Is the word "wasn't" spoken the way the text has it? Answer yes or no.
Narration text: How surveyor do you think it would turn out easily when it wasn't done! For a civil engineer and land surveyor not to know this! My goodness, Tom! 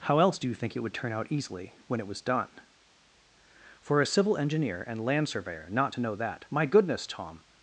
no